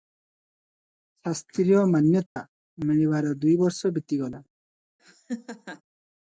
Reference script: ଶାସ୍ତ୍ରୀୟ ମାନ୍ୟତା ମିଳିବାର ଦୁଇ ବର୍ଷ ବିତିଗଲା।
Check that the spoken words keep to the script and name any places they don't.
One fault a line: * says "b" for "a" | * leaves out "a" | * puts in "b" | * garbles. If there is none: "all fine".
all fine